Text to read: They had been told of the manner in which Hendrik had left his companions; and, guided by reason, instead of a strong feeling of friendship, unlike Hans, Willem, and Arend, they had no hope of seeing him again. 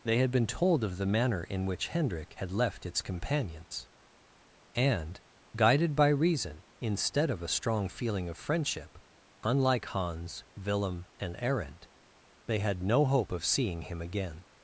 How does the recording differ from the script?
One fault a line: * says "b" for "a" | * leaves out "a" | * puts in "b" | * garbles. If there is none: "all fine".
* says "its" for "his"